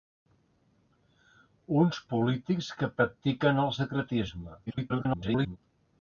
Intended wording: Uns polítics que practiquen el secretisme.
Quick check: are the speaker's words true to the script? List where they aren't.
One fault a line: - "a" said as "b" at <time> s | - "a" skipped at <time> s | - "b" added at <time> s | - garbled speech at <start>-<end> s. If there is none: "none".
- garbled speech at 4.7-5.6 s